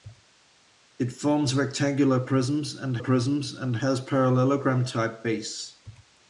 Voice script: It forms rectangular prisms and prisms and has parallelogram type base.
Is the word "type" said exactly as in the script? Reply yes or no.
yes